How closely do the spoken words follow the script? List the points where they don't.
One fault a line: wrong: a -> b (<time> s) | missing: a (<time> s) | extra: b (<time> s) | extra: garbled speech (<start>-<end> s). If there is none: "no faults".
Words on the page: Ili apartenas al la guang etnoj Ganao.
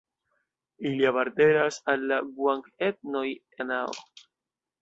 no faults